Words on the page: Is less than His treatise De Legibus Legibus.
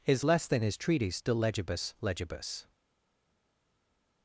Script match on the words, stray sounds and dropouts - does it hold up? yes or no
yes